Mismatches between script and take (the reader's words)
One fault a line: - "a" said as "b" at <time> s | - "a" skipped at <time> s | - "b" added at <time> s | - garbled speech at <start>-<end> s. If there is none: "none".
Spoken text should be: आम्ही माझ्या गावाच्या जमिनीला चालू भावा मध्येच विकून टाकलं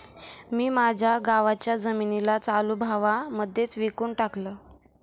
- "आम्ही" said as "मी" at 0.5 s